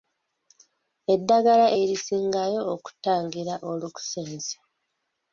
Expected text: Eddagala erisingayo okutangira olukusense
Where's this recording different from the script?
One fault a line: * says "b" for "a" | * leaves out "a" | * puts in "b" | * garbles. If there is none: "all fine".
all fine